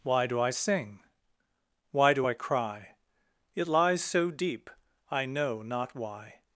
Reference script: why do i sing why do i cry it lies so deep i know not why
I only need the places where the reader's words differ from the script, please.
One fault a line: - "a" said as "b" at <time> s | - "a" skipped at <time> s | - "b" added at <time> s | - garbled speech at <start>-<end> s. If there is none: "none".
none